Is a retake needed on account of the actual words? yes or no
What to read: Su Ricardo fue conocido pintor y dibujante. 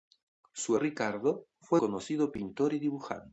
no